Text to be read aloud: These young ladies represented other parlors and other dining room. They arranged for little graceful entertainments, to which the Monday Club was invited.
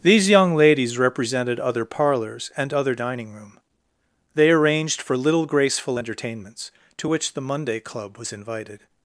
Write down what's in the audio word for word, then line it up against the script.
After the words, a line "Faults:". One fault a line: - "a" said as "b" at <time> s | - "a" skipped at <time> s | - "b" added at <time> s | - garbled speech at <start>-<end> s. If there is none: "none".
These young ladies represented other parlors and other dining room. They arranged for little graceful entertainments, to which the Monday Club was invited.
Faults:
none